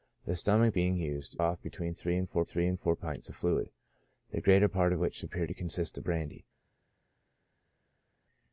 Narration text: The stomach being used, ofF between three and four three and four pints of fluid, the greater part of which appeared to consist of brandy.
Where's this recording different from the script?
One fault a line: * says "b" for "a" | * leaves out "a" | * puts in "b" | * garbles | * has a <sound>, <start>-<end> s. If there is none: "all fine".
all fine